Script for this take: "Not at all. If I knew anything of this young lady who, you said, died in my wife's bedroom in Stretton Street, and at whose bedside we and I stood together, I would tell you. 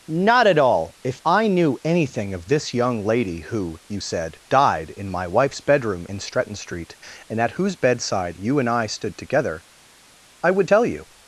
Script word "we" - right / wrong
wrong